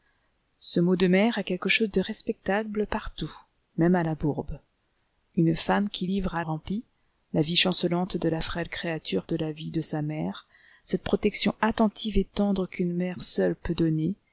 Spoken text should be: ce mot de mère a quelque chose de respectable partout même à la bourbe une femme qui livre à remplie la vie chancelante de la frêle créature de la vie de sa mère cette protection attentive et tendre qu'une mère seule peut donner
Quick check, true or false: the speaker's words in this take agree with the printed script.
true